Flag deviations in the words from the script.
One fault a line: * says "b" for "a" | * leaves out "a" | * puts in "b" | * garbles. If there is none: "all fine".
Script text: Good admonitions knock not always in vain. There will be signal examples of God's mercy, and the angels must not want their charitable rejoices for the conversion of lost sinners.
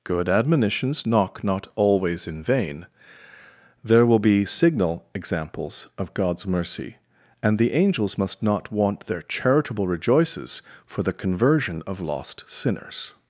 all fine